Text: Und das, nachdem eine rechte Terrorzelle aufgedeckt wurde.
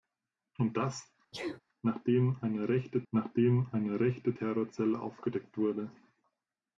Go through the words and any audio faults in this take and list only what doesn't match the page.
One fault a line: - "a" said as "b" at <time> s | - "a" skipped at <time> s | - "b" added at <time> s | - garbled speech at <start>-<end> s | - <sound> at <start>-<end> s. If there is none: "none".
- sneeze at 1.3-1.6 s
- "nachdem eine rechte" added at 3.1 s